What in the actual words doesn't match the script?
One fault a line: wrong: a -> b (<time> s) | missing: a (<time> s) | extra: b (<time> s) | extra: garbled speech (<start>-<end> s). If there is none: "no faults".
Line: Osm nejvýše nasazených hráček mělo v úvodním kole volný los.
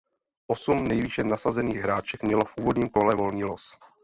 no faults